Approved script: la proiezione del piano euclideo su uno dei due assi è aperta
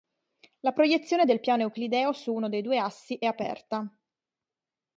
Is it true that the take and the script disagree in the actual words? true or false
false